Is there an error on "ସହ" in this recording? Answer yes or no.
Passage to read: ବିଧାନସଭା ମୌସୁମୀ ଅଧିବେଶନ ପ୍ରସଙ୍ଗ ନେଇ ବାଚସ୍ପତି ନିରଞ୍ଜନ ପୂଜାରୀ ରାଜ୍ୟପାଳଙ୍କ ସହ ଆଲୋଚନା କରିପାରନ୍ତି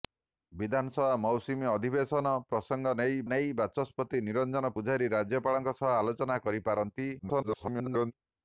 no